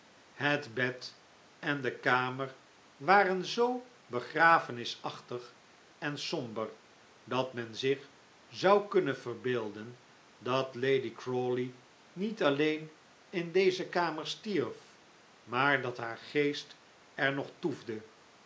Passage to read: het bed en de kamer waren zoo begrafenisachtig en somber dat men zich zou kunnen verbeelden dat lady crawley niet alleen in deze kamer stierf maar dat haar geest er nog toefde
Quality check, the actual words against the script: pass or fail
pass